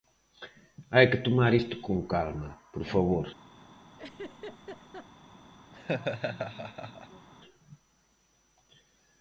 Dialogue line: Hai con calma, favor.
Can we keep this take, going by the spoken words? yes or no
no